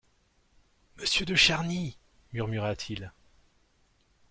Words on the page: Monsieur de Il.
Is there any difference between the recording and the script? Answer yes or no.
yes